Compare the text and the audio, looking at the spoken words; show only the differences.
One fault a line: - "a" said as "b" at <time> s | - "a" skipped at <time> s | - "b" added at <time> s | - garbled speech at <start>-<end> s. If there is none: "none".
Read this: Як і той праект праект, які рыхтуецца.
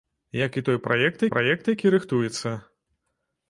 none